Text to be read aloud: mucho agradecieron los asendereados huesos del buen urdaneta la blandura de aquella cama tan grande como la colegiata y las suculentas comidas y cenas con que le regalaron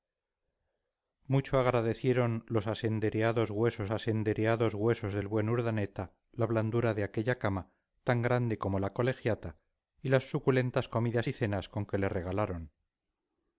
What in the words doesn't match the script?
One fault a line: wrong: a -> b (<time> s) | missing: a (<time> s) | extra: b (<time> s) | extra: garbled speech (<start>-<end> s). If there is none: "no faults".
extra: asendereados huesos (3.9 s)